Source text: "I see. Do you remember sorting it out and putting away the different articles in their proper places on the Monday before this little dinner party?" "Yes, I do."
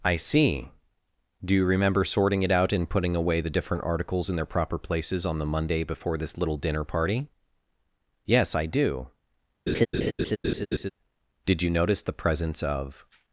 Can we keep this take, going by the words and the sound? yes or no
no